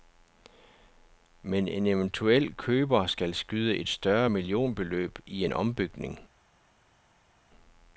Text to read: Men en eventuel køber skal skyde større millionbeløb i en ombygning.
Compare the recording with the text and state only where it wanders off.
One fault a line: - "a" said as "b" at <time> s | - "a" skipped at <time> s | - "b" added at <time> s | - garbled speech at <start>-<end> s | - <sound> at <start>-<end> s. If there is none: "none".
- "et" added at 3.8 s